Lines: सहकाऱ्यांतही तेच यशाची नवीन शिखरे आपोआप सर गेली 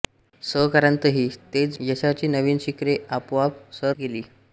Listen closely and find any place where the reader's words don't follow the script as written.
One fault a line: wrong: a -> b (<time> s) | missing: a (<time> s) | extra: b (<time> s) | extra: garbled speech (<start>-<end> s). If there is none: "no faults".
no faults